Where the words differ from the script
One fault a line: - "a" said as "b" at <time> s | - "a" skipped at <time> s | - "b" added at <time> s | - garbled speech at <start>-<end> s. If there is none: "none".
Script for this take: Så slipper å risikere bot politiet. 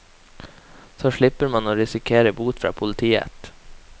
- "man" added at 1.6 s
- "fra" added at 2.6 s